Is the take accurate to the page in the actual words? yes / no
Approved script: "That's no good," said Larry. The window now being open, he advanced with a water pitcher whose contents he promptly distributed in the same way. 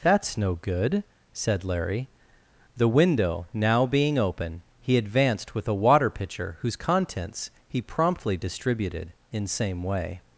no